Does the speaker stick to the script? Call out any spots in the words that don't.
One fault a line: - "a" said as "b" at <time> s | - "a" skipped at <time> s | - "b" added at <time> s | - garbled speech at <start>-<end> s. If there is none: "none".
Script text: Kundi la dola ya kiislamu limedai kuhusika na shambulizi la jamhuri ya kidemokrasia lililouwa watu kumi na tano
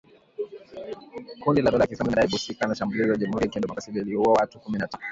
none